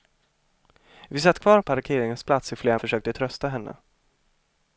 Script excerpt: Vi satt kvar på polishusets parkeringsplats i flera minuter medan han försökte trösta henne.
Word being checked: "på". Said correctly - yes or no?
no